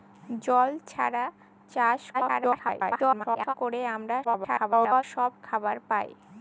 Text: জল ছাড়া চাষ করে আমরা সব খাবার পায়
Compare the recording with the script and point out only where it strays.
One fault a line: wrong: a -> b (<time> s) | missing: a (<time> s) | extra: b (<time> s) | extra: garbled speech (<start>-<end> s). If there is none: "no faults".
extra: garbled speech (2.1-3.5 s)
extra: garbled speech (4.2-5.0 s)